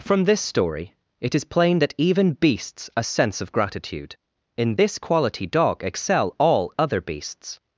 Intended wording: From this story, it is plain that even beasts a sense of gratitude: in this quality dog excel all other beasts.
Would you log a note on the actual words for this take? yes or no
no